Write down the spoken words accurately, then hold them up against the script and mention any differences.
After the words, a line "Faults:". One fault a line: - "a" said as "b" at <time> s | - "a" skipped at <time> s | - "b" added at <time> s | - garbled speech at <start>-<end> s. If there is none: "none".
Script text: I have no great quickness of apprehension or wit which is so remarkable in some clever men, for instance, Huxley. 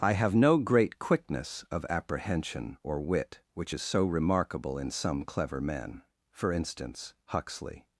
I have no great quickness of apprehension or wit which is so remarkable in some clever men, for instance, Huxley.
Faults:
none